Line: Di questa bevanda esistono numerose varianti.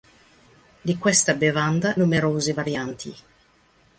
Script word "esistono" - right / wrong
wrong